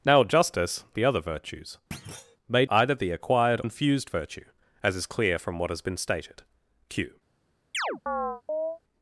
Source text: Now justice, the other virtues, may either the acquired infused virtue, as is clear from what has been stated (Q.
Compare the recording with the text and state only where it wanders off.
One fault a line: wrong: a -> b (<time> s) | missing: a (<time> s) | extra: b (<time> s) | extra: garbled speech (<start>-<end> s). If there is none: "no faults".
no faults